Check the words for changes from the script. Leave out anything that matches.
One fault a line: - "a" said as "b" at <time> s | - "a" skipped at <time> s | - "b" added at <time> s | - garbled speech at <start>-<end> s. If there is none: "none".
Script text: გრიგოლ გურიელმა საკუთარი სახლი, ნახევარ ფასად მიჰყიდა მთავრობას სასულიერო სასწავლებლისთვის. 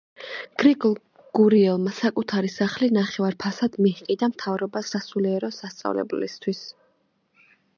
none